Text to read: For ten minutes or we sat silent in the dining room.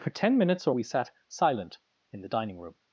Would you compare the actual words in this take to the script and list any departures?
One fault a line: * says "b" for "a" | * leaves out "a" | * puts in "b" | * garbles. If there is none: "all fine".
all fine